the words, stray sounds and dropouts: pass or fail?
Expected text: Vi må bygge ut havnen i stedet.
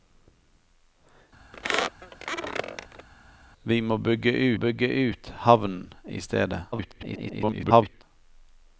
fail